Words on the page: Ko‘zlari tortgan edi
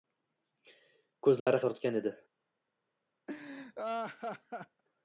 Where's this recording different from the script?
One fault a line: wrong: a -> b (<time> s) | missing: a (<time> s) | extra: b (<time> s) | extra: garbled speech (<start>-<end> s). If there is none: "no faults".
no faults